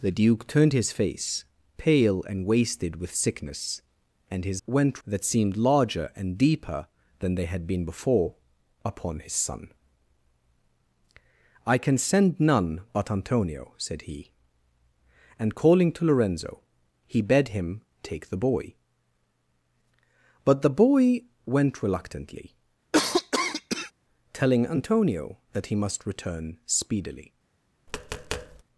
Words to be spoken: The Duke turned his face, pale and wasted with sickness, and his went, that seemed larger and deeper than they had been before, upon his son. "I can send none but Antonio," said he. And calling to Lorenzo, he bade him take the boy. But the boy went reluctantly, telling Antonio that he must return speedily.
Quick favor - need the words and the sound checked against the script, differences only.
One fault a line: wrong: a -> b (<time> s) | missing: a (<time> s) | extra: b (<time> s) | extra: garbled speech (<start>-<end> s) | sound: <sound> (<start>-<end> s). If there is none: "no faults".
sound: cough (22.9-23.9 s)
sound: tap (27.9-28.6 s)